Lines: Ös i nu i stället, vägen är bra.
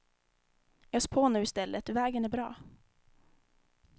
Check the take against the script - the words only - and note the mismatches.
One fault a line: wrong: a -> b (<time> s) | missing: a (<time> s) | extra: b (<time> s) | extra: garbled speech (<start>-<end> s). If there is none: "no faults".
wrong: i -> på (1.1 s)